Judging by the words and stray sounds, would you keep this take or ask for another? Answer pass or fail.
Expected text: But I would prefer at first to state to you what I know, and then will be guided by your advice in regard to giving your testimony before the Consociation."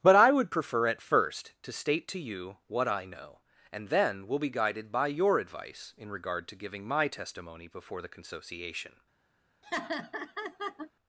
fail